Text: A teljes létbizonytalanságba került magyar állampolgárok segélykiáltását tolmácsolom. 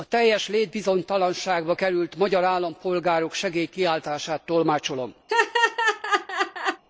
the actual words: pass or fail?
pass